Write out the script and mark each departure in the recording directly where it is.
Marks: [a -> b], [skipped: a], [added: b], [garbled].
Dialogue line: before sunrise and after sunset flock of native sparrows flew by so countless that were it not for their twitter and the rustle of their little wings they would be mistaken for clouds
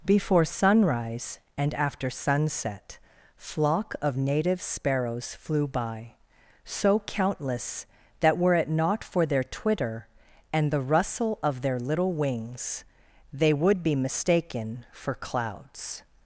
before sunrise and after sunset flock of native sparrows flew by so countless that were it not for their twitter and the rustle of their little wings they would be mistaken for clouds